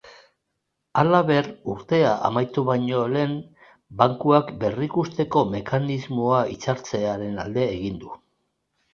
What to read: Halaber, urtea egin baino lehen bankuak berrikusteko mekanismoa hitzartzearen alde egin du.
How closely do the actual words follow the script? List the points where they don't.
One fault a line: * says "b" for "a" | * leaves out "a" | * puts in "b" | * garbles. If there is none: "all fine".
* says "amaitu" for "egin"